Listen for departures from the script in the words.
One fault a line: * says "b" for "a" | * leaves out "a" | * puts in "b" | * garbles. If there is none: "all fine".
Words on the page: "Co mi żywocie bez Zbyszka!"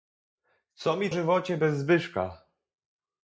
all fine